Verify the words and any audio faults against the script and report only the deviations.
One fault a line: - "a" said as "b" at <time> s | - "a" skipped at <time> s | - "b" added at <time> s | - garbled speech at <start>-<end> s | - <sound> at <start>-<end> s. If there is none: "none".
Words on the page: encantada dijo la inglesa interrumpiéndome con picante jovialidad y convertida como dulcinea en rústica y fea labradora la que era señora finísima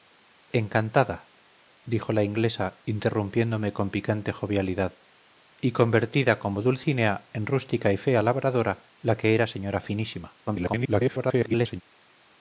- garbled speech at 10.5-11.8 s